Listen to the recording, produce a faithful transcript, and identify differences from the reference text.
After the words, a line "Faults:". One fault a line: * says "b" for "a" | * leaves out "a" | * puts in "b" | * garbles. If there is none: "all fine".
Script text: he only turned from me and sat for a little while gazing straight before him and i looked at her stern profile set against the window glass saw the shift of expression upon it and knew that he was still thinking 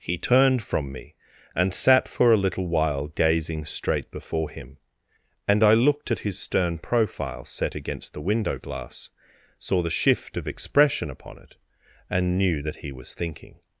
he turned from me and sat for a little while gazing straight before him and i looked at his stern profile set against the window glass saw the shift of expression upon it and knew that he was thinking
Faults:
* leaves out "only"
* says "his" for "her"
* leaves out "still"